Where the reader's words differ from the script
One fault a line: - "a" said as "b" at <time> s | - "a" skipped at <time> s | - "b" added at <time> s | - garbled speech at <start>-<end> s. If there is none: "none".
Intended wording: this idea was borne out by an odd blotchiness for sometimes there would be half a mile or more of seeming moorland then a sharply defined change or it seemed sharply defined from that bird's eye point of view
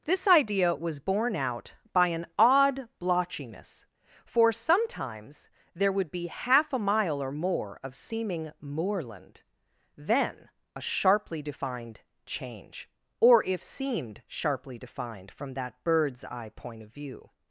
- "it" said as "if" at 13.4 s